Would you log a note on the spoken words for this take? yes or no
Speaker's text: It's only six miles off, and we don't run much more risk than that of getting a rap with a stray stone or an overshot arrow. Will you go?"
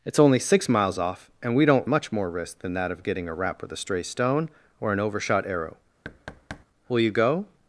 yes